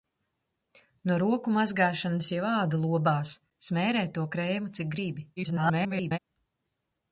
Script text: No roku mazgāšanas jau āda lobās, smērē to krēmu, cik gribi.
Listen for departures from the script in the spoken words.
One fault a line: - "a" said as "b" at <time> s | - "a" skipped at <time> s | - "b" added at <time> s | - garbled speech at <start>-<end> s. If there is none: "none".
- garbled speech at 5.4-6.2 s